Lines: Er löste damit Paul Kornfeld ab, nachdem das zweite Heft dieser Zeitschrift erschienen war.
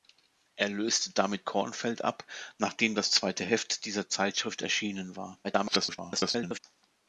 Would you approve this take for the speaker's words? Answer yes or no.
no